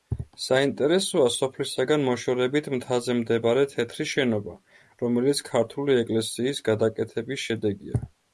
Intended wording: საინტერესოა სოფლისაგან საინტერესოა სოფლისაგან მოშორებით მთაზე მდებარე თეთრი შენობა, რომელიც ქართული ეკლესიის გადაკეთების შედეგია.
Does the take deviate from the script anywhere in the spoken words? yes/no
yes